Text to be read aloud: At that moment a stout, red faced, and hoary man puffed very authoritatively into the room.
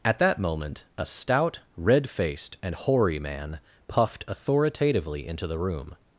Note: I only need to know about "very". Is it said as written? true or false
false